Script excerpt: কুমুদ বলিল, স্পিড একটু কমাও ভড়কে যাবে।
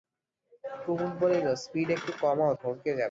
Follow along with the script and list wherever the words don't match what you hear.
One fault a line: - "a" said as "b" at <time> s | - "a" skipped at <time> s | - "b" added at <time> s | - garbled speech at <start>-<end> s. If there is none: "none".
none